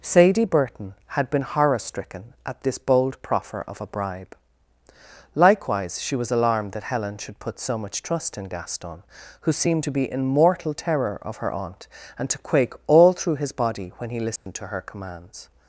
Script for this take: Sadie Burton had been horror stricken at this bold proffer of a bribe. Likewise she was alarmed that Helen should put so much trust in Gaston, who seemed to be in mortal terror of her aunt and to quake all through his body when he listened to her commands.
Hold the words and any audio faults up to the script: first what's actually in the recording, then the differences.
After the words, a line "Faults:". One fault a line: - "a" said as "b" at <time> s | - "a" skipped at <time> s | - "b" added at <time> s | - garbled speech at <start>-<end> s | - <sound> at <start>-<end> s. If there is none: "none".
Sadie Burton had been horror stricken at this bold proffer of a bribe. Likewise she was alarmed that Helen should put so much trust in Gaston, who seemed to be in mortal terror of her aunt and to quake all through his body when he listened to her commands.
Faults:
- dropout at 14.4-14.5 s